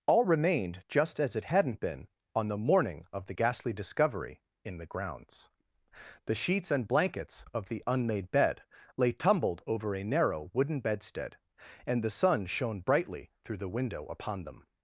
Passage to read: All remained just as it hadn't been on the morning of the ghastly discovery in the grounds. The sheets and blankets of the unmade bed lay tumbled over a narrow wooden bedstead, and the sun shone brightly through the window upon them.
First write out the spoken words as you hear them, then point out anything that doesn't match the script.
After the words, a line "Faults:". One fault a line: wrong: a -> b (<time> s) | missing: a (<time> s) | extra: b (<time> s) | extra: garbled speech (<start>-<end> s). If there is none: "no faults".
All remained just as it hadn't been on the morning of the ghastly discovery in the grounds. The sheets and blankets of the unmade bed lay tumbled over a narrow wooden bedstead, and the sun shone brightly through the window upon them.
Faults:
no faults